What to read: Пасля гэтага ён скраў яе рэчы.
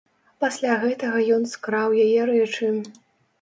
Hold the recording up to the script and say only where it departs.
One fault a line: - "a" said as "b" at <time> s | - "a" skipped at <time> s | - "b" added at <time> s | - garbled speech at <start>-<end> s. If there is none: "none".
none